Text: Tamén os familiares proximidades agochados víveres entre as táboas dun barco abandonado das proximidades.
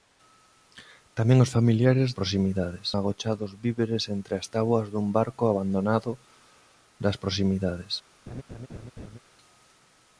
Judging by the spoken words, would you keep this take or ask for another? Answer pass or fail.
pass